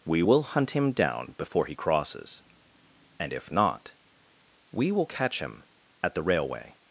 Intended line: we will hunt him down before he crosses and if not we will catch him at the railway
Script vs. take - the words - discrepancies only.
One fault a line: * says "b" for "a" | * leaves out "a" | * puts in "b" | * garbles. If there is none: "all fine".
all fine